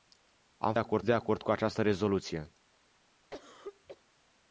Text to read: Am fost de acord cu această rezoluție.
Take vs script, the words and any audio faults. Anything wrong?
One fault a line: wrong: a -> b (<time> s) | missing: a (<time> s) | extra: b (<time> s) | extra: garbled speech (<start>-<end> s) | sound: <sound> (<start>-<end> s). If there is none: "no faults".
wrong: fost -> acord (0.8 s)
sound: cough (3.3-4.0 s)